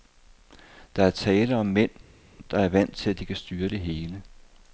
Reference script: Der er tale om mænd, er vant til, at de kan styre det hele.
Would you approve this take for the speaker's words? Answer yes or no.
no